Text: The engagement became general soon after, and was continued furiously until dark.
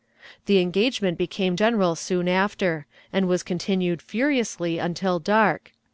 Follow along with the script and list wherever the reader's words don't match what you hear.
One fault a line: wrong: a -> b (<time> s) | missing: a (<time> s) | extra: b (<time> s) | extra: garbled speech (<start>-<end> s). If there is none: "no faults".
no faults